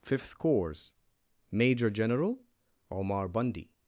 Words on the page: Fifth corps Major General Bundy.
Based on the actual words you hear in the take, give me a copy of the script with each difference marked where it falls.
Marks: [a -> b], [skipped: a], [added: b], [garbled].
Fifth corps Major General [added: Omar] Bundy.